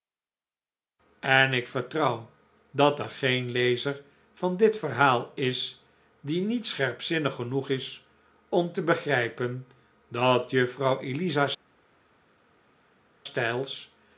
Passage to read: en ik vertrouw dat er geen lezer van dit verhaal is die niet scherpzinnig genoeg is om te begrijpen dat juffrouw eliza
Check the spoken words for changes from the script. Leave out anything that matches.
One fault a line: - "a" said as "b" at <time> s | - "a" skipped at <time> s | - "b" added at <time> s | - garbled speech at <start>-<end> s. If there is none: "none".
none